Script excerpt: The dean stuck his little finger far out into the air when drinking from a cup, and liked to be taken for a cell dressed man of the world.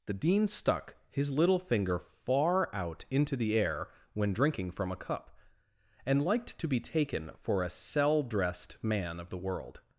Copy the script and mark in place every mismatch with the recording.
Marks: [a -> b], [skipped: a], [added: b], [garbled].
The dean stuck his little finger far out into the air when drinking from a cup, and liked to be taken for a cell dressed man of the world.